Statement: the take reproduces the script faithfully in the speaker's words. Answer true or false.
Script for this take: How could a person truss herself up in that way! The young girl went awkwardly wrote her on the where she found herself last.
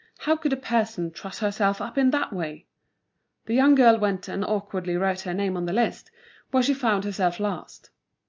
false